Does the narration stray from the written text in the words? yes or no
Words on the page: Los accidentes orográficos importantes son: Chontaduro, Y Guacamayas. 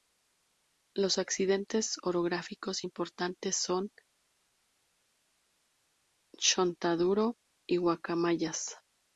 no